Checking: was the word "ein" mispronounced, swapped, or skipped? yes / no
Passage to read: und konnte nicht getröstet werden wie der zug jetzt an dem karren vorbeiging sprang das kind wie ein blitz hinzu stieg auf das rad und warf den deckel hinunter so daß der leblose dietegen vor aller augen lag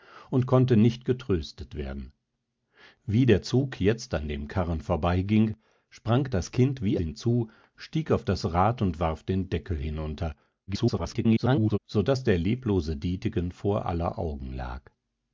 yes